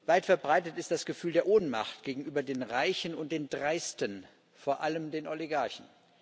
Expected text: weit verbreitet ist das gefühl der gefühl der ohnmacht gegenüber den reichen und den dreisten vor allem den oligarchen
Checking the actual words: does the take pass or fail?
fail